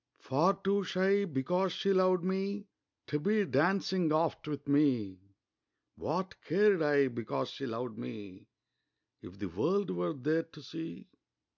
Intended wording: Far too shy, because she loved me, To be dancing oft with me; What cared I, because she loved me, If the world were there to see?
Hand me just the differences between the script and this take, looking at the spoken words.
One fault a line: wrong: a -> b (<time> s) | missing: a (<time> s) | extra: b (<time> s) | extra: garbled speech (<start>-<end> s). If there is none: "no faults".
no faults